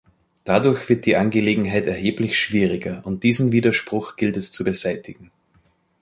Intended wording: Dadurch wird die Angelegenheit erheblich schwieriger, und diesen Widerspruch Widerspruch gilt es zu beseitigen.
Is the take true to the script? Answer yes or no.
no